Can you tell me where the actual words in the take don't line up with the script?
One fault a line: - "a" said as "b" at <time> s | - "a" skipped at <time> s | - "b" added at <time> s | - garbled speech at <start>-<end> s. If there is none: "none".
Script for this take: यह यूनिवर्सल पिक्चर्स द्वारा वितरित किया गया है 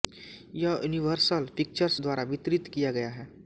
none